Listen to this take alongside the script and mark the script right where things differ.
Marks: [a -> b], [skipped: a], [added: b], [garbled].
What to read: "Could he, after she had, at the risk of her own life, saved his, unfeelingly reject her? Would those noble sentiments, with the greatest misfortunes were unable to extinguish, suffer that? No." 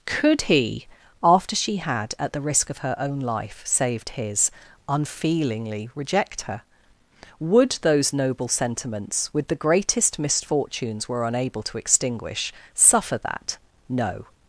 "Could he, after she had, at the risk of her own life, saved his, unfeelingly reject her? Would those noble sentiments, with the greatest misfortunes were unable to extinguish, suffer that? No."